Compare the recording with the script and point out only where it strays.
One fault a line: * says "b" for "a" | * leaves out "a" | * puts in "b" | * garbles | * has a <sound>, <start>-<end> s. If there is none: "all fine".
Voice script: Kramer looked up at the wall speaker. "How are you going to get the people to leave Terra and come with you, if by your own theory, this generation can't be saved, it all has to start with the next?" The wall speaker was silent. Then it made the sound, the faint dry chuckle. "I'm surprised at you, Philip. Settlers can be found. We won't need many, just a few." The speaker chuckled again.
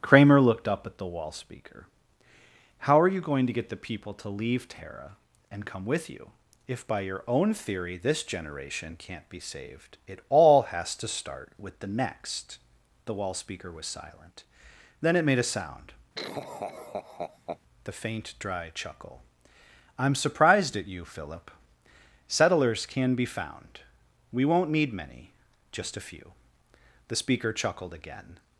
* says "a" for "the"
* has a laugh, 16.1-17.6 s